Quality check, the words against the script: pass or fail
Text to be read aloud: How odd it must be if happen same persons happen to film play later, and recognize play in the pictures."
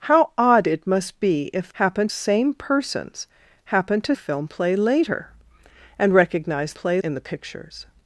pass